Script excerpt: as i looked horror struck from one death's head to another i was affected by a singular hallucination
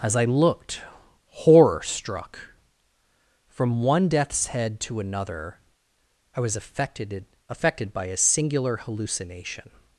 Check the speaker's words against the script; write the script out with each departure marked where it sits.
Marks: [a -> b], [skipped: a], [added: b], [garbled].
as i looked horror struck from one death's head to another i was affected [added: affected] by a singular hallucination